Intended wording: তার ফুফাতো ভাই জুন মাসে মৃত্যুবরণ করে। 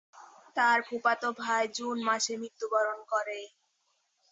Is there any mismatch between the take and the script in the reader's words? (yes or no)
no